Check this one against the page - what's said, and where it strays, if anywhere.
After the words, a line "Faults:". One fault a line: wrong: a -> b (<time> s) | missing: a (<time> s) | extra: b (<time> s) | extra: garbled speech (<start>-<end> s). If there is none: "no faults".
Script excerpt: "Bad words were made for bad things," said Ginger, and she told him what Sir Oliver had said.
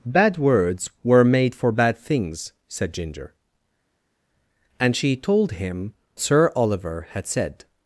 "Bad words were made for bad things," said Ginger, and she told him Sir Oliver had said.
Faults:
missing: what (5.9 s)